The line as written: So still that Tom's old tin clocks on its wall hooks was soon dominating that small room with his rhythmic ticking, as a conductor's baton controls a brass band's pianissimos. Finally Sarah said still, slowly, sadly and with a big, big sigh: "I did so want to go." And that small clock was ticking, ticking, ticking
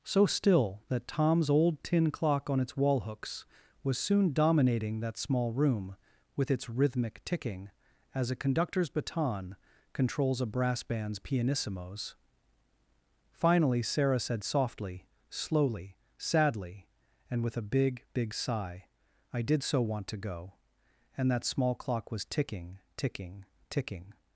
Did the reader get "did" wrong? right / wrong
right